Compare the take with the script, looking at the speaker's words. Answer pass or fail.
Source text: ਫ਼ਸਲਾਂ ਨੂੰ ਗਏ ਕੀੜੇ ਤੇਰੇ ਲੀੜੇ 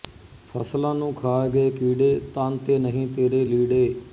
fail